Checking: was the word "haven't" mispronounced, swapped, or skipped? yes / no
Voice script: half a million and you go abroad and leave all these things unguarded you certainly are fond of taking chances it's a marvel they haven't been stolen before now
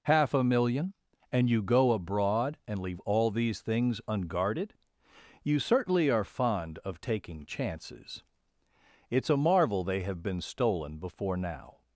yes